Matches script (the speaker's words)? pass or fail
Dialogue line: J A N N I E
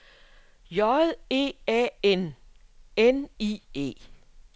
fail